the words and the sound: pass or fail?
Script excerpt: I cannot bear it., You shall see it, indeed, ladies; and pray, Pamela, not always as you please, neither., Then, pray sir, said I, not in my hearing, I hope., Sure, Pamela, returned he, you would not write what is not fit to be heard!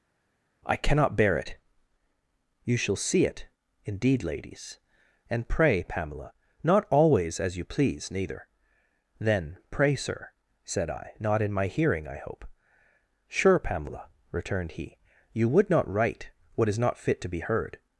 pass